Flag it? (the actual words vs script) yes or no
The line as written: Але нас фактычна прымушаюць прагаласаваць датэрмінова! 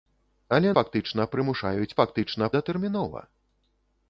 yes